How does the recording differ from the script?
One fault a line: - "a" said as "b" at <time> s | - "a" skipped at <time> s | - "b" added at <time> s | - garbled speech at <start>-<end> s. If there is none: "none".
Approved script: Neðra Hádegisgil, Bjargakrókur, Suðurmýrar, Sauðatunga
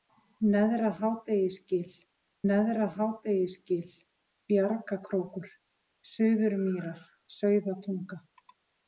- "neðra Hádegisgil" added at 2.5 s